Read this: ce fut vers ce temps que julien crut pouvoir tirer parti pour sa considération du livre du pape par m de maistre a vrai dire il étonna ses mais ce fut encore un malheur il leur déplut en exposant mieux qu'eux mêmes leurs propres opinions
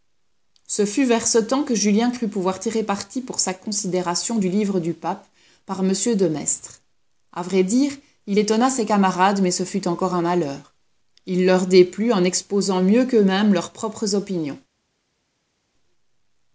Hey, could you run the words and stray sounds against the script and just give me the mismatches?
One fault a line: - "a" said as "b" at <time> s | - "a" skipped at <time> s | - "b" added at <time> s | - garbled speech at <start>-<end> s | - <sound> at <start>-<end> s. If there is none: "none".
- "camarades" added at 8.8 s